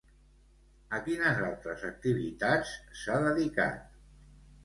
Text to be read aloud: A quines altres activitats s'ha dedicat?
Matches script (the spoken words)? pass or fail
pass